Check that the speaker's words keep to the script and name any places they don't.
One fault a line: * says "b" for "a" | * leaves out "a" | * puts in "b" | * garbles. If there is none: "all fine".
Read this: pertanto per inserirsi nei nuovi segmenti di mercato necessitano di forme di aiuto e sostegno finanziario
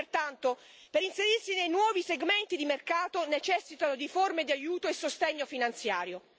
all fine